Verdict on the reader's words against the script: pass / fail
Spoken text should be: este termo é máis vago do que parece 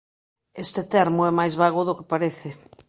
pass